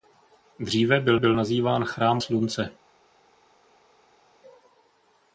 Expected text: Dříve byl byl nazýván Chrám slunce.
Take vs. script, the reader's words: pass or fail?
pass